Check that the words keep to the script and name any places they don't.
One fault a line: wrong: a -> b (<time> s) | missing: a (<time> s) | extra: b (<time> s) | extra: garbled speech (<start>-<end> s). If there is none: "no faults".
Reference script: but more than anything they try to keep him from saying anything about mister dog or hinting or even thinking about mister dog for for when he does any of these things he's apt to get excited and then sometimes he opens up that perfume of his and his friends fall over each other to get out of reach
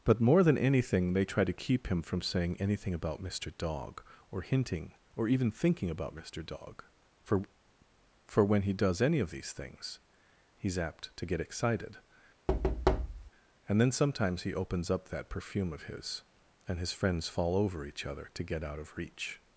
no faults